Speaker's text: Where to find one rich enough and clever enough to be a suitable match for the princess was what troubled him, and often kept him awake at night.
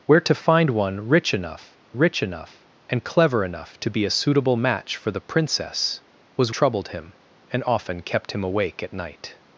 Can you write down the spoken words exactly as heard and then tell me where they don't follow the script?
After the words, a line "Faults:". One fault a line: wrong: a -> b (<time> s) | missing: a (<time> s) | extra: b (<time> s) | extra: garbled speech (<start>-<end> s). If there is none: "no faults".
Where to find one rich enough rich enough and clever enough to be a suitable match for the princess was troubled him, and often kept him awake at night.
Faults:
extra: rich enough (2.0 s)
missing: what (6.5 s)